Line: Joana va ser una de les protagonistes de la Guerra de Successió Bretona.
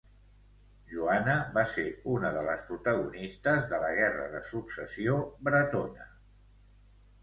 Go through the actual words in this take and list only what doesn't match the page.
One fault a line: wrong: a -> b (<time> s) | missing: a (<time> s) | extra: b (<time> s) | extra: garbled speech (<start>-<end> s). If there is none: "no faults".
no faults